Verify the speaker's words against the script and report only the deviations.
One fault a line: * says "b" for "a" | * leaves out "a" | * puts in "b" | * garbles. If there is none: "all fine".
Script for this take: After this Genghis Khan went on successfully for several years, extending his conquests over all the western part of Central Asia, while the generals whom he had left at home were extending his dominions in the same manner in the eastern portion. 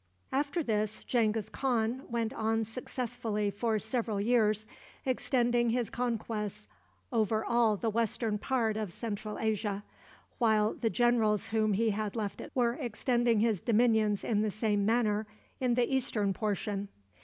* leaves out "home"